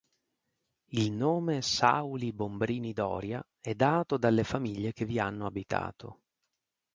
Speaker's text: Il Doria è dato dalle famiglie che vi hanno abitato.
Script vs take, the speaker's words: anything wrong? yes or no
yes